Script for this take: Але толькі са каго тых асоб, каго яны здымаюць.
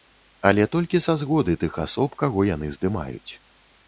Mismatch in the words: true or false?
true